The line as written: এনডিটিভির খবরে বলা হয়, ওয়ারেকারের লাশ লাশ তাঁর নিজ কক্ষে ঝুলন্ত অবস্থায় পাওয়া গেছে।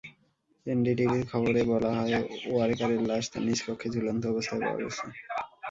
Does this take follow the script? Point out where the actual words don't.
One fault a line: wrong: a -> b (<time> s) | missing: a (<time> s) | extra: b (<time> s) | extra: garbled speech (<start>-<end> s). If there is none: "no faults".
missing: লাশ (3.2 s)